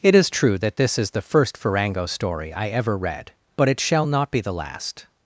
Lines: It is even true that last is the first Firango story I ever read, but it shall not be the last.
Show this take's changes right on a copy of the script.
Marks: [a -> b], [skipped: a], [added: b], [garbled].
It is [skipped: even] true that [last -> this] is the first Firango story I ever read, but it shall not be the last.